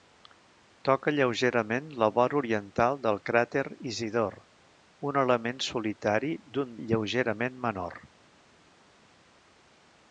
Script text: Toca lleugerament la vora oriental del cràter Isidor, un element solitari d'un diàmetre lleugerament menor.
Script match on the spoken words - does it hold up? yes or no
no